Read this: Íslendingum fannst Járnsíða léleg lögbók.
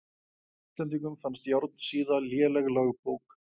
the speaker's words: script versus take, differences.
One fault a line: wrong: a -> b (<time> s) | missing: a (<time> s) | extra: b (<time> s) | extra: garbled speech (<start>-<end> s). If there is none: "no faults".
no faults